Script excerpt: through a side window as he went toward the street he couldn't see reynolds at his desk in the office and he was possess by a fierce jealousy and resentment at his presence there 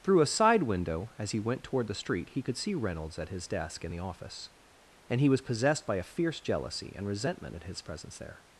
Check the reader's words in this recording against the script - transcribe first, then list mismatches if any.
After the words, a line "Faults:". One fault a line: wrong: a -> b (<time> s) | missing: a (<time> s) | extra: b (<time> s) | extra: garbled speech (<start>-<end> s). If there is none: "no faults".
through a side window as he went toward the street he could see reynolds at his desk in the office and he was possessed by a fierce jealousy and resentment at his presence there
Faults:
wrong: couldn't -> could (2.4 s)
wrong: possess -> possessed (5.4 s)